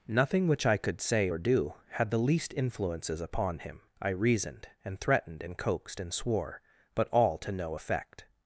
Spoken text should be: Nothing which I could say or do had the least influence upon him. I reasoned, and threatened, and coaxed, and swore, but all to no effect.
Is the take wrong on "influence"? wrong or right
wrong